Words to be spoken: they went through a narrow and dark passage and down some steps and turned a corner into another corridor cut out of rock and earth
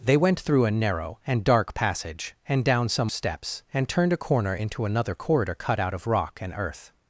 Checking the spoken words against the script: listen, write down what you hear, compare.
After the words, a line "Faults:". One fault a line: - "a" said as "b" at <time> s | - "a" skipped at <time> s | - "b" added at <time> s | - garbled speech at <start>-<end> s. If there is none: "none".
they went through a narrow and dark passage and down some steps and turned a corner into another corridor cut out of rock and earth
Faults:
none